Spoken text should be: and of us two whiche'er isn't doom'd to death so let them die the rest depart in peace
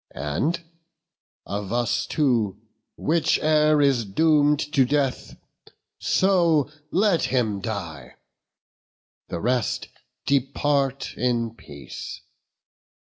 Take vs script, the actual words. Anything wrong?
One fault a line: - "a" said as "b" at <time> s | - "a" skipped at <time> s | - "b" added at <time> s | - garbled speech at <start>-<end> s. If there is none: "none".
- "isn't" said as "is" at 3.8 s
- "them" said as "him" at 7.3 s